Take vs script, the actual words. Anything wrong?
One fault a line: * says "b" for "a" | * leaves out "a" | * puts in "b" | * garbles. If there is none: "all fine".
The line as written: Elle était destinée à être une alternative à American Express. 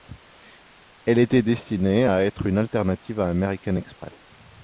all fine